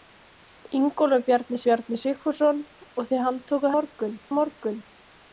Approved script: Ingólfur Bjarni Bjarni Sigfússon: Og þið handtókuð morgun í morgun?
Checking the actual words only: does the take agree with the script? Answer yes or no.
yes